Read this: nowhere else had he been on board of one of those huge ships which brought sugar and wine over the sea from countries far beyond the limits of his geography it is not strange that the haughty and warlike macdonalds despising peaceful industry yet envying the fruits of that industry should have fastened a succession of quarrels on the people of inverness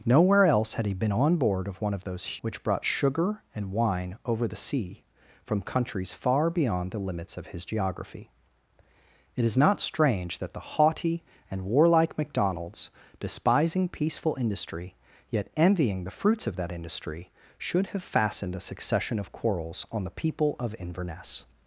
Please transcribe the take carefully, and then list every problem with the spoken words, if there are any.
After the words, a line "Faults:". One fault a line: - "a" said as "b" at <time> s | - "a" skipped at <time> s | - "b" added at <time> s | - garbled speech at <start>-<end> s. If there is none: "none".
nowhere else had he been on board of one of those which brought sugar and wine over the sea from countries far beyond the limits of his geography it is not strange that the haughty and warlike macdonalds despising peaceful industry yet envying the fruits of that industry should have fastened a succession of quarrels on the people of inverness
Faults:
- "huge ships" skipped at 2.4 s